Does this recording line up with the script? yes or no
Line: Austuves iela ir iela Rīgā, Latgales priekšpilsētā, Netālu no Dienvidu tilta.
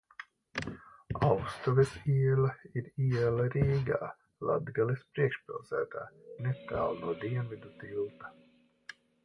yes